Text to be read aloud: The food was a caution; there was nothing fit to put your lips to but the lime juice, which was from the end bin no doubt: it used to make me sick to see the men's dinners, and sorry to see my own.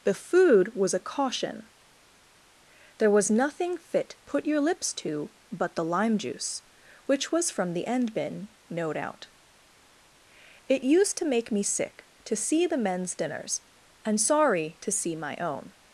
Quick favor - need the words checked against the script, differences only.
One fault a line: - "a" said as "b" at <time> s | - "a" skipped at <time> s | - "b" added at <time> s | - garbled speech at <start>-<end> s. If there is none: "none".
- "to" skipped at 4.2 s